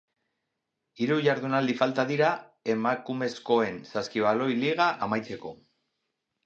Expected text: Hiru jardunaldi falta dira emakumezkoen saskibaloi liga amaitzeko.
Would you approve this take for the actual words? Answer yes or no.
yes